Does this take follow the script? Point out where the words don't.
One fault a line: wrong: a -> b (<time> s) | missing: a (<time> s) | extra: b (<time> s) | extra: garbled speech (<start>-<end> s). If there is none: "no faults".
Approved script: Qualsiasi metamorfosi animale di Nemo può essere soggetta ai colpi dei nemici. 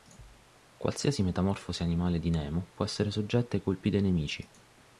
no faults